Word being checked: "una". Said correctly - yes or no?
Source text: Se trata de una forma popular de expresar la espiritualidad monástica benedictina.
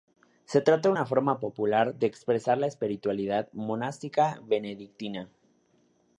yes